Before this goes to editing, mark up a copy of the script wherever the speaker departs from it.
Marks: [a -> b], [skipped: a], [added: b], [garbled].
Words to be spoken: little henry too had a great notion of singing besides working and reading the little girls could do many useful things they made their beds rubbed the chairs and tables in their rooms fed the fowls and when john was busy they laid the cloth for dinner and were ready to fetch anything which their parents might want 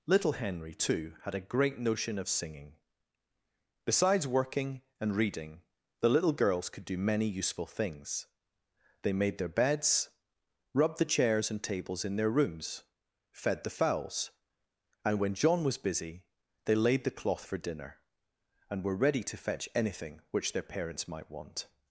little henry too had a great notion of singing besides working and reading the little girls could do many useful things they made their beds rubbed the chairs and tables in their rooms fed the fowls and when john was busy they laid the cloth for dinner and were ready to fetch anything which their parents might want